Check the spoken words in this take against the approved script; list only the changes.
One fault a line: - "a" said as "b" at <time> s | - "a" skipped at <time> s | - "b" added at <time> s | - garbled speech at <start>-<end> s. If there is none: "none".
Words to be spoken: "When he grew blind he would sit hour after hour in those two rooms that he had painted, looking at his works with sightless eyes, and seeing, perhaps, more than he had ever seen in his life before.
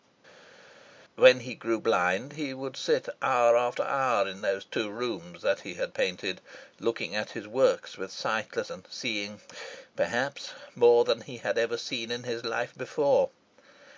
- "eyes" skipped at 8.7 s